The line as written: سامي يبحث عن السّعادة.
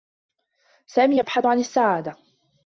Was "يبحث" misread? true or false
false